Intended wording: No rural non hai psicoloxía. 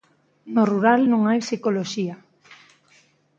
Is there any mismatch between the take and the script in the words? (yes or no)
no